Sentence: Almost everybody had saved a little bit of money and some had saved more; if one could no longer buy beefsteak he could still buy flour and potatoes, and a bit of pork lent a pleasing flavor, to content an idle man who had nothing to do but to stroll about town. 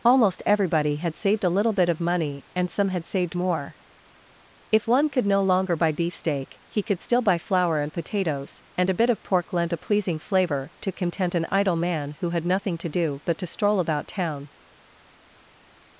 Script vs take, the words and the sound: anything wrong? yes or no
no